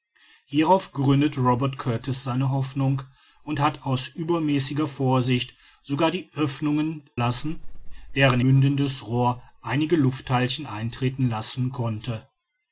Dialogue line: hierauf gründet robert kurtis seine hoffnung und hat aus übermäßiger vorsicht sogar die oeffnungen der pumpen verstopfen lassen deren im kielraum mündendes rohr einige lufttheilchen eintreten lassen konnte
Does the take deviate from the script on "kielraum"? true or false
true